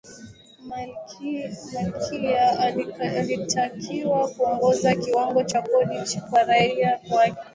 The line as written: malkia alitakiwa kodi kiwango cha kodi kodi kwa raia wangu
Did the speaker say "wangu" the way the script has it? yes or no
no